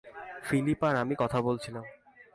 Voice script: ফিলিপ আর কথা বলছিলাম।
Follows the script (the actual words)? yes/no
no